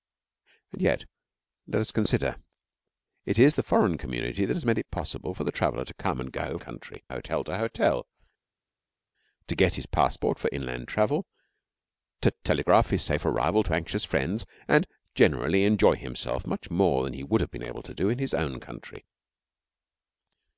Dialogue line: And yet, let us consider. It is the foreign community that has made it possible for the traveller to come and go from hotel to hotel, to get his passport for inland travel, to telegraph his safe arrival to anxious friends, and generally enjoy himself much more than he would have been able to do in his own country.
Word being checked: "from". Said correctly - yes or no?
no